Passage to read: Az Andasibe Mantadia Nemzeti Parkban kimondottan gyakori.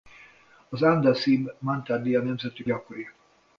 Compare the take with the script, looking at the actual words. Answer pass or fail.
fail